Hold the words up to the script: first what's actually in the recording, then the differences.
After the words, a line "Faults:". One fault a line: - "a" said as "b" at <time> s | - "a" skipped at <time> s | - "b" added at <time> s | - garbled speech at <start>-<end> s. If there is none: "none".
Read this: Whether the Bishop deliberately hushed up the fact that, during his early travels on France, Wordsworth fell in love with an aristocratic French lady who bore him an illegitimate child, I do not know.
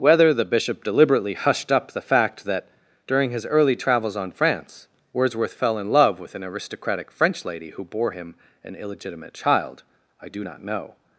Whether the Bishop deliberately hushed up the fact that, during his early travels on France, Wordsworth fell in love with an aristocratic French lady who bore him an illegitimate child, I do not know.
Faults:
none